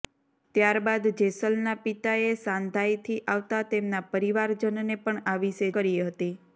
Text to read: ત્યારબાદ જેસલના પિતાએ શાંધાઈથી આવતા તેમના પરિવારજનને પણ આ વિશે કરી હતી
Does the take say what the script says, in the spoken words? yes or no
yes